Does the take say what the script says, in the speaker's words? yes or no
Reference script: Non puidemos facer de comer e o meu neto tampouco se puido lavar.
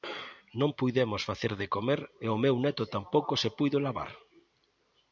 yes